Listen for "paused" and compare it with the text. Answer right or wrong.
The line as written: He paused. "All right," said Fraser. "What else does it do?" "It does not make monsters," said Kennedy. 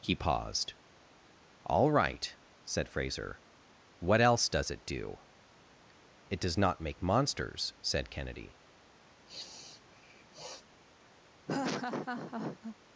right